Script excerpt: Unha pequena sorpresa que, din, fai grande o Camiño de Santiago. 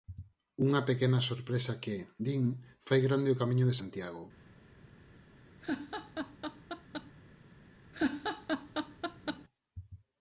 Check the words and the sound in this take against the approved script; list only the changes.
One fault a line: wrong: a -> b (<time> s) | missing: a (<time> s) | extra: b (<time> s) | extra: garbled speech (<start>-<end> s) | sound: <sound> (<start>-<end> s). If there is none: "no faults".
sound: laugh (5.6-7.1 s)
sound: laugh (7.9-9.5 s)